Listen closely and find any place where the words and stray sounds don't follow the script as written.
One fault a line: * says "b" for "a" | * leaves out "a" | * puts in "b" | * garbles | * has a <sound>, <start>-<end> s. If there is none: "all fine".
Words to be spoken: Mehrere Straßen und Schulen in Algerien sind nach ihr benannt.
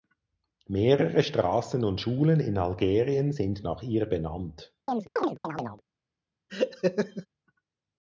* has a chirp, 4.9-5.8 s
* has a laugh, 6.5-7.3 s